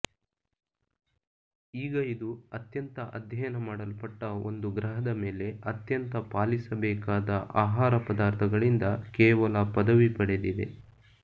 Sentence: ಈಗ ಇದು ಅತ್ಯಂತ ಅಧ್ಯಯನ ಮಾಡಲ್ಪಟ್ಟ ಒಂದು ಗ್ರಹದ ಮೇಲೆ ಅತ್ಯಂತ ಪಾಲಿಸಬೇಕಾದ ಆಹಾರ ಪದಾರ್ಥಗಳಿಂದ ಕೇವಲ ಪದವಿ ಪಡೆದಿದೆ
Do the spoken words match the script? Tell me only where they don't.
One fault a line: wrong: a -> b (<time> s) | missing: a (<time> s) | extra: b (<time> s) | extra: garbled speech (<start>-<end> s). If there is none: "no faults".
no faults